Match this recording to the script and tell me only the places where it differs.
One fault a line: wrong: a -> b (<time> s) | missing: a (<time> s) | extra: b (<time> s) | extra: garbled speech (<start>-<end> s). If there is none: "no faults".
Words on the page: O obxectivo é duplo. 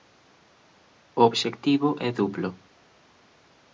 no faults